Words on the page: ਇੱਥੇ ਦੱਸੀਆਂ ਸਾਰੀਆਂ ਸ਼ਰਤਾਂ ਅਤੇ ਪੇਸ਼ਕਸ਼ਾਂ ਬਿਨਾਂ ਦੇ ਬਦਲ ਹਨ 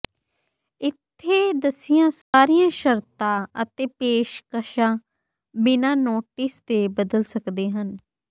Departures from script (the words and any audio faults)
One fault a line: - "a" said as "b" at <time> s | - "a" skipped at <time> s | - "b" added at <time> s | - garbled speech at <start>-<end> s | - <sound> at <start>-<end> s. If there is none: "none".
- dropout at 2.2-2.3 s
- "ਨੋਟਿਸ" added at 6.0 s
- "ਸਕਦੇ" added at 7.2 s